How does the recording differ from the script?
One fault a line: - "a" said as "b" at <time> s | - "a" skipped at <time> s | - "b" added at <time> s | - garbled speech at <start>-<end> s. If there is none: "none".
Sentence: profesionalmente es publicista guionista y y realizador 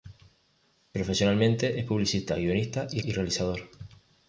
none